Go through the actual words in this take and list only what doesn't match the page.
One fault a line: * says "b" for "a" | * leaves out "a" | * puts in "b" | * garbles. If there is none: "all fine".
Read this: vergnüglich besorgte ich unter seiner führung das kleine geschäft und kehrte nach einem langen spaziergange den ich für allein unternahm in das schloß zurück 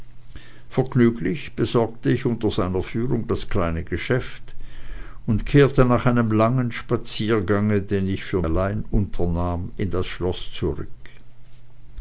all fine